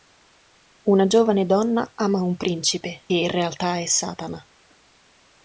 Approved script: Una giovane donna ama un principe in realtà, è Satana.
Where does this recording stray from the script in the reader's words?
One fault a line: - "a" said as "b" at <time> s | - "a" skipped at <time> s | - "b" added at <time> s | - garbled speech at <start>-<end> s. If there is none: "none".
none